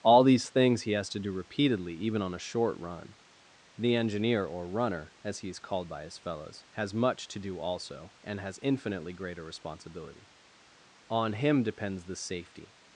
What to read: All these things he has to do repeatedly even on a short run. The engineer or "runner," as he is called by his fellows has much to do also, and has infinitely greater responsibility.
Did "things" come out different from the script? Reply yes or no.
no